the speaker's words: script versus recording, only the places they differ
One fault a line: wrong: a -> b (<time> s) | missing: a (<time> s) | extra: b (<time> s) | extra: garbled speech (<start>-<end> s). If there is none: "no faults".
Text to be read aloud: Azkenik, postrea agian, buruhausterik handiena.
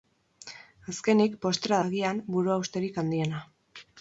no faults